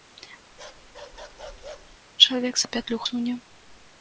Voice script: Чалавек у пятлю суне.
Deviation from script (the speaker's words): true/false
false